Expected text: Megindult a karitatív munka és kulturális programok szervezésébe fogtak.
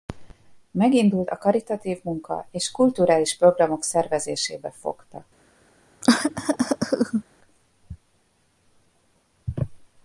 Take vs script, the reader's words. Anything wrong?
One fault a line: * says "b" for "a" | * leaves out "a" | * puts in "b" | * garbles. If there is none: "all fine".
all fine